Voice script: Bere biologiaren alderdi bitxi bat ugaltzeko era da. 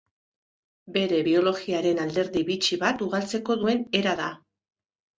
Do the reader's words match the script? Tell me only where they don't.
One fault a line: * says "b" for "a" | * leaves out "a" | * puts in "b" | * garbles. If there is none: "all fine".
* puts in "duen"